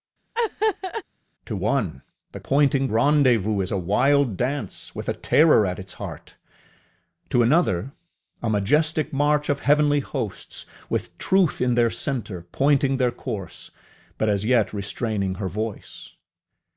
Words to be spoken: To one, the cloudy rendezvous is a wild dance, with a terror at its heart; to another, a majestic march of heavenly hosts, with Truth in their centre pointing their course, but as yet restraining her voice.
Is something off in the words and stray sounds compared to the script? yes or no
yes